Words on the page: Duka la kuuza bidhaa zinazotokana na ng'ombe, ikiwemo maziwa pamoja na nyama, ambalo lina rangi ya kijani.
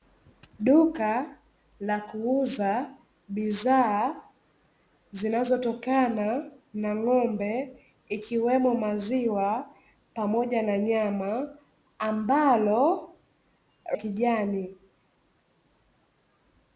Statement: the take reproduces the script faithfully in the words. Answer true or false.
false